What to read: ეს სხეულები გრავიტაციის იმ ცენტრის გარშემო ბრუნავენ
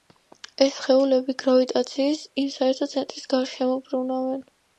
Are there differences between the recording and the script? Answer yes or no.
yes